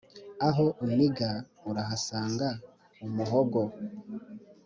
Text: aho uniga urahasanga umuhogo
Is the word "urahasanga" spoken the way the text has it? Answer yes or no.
yes